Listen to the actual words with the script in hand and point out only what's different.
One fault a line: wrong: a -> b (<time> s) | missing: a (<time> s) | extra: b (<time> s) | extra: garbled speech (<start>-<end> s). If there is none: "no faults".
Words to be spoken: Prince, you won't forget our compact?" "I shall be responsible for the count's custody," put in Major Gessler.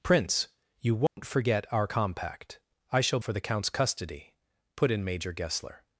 missing: be responsible (3.2 s)